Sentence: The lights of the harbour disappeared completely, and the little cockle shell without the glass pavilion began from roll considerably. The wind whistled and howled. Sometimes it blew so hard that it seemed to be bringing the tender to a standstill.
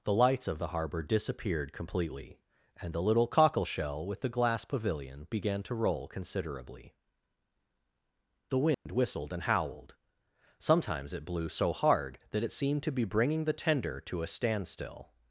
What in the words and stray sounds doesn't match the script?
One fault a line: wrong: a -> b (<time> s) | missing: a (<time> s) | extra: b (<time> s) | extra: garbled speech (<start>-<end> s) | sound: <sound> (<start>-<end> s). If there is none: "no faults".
wrong: without -> with (4.0 s)
wrong: from -> to (5.6 s)
sound: dropout (8.7-8.9 s)